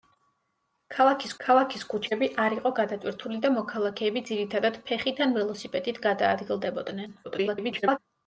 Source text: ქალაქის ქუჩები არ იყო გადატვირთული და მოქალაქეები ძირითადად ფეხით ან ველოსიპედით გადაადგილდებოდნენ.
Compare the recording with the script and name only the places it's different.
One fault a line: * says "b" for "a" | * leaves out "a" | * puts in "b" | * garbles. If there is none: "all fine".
* puts in "ქალაქის"
* garbles